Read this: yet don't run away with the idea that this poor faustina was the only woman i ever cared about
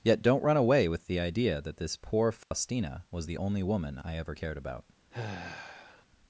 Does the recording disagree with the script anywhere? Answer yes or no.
no